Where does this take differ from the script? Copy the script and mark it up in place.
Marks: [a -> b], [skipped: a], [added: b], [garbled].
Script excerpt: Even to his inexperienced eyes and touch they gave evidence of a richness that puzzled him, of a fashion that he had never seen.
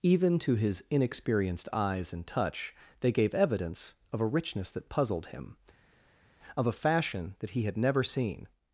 Even to his inexperienced eyes and touch they gave evidence of a richness that puzzled him, of a fashion that he had never seen.